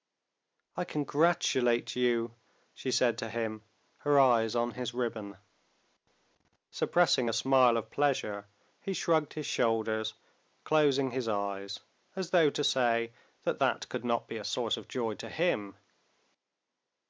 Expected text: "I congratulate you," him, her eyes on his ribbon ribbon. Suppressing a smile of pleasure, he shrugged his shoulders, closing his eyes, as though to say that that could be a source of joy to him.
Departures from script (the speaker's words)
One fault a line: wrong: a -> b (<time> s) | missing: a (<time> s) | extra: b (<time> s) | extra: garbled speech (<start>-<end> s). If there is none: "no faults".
extra: she said to (2.7 s)
missing: ribbon (5.4 s)
extra: not (14.0 s)